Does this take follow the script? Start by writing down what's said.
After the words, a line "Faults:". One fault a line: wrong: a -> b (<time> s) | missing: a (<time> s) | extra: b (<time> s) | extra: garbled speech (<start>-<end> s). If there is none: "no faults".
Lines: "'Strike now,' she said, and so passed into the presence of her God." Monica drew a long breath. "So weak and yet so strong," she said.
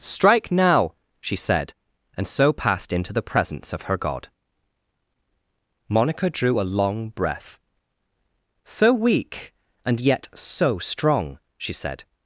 "'Strike now,' she said, and so passed into the presence of her God." Monica drew a long breath. "So weak and yet so strong," she said.
Faults:
no faults